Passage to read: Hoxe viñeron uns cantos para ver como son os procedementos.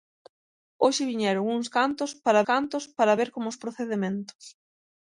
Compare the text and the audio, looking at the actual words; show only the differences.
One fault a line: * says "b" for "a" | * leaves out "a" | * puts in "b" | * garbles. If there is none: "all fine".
* puts in "cantos para"
* leaves out "son"